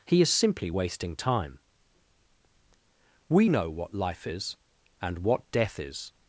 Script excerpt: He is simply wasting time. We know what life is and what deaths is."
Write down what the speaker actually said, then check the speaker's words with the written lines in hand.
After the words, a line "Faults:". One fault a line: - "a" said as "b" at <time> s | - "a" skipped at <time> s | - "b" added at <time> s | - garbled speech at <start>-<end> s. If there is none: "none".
He is simply wasting time. We know what life is and what death is."
Faults:
- "deaths" said as "death" at 5.5 s